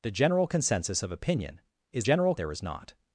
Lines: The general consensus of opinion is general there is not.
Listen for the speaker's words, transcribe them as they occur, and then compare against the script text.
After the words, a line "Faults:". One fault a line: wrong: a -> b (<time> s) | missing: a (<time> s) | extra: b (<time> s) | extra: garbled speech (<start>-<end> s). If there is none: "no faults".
The general consensus of opinion is general there is not.
Faults:
no faults